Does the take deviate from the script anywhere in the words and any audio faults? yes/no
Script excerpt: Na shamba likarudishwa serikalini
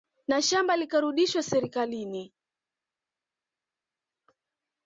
no